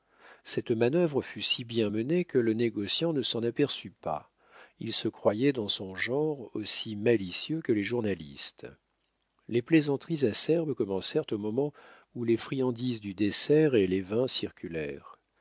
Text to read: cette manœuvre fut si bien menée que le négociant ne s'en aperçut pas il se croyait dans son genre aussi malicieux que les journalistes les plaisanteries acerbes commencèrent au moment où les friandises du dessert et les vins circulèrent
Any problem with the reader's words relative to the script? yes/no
no